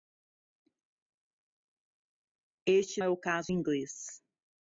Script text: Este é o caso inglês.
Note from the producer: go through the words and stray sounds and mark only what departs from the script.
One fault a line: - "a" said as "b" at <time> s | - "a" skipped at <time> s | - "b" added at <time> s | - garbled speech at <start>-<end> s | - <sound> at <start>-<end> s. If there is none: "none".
none